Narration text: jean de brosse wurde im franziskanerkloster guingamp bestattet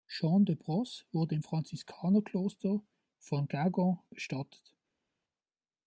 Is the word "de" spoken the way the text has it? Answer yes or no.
yes